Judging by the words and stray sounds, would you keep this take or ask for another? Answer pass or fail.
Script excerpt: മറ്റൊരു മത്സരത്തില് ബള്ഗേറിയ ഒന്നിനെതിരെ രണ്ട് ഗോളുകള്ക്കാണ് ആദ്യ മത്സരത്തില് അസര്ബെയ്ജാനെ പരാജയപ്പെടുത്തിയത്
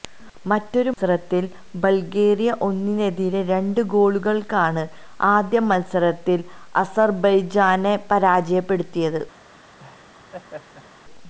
fail